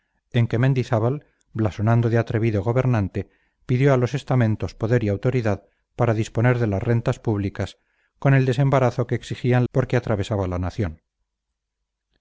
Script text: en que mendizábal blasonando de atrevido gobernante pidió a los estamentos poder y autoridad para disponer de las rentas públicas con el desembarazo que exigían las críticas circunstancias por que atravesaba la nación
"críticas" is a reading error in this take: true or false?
true